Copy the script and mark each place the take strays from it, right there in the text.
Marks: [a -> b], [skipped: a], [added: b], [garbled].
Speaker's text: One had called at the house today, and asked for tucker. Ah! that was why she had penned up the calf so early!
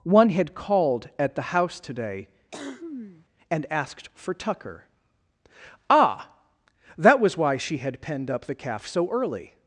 One had called at the house today, and asked for tucker. Ah! that was why she had penned up the calf so early!